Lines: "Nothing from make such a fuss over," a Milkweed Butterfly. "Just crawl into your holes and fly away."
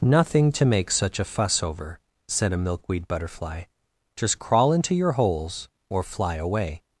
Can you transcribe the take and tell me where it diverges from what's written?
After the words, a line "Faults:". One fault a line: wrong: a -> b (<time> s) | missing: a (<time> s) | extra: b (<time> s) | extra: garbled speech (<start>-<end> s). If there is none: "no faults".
"Nothing to make such a fuss over," said a Milkweed Butterfly. "Just crawl into your holes or fly away."
Faults:
wrong: from -> to (0.5 s)
extra: said (2.3 s)
wrong: and -> or (5.9 s)